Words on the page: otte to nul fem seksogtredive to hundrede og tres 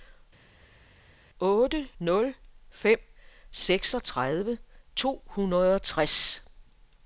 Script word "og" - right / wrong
right